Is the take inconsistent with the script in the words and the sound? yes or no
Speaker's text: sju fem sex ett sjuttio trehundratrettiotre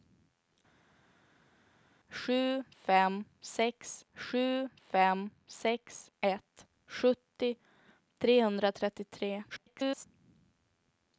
yes